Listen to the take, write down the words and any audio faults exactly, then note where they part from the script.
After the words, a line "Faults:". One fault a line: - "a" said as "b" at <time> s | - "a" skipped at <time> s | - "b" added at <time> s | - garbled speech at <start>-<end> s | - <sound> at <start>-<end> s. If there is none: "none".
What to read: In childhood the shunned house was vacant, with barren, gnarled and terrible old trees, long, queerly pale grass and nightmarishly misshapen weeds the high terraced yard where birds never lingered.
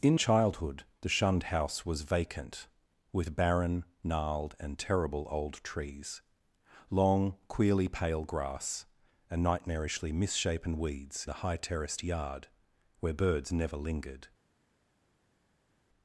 In childhood the shunned house was vacant, with barren, gnarled and terrible old trees, long, queerly pale grass and nightmarishly misshapen weeds the high terraced yard where birds never lingered.
Faults:
none